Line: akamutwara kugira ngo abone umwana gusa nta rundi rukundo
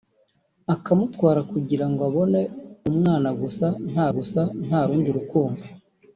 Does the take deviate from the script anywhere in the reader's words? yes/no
yes